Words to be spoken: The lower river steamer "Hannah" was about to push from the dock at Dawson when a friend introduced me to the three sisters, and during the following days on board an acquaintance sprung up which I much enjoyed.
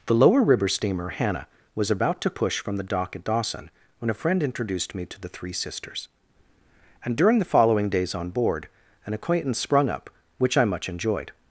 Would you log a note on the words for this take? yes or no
no